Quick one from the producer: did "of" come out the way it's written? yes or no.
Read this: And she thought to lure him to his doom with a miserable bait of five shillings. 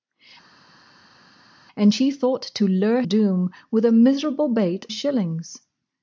no